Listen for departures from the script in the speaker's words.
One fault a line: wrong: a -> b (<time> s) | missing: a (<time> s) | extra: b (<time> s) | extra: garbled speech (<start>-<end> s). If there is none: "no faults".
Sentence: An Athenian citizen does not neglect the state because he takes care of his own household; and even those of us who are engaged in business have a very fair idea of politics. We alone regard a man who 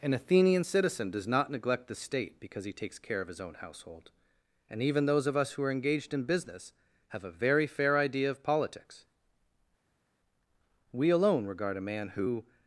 no faults